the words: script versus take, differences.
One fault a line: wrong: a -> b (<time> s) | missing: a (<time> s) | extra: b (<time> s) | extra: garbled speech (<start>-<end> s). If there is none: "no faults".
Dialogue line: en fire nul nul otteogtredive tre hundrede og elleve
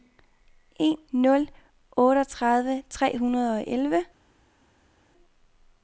missing: fire nul (1.0 s)